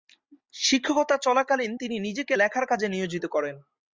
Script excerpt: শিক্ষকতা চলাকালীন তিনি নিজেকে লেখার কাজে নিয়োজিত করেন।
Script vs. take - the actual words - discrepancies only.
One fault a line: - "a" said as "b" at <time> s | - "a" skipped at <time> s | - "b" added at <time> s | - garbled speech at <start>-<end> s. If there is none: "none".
none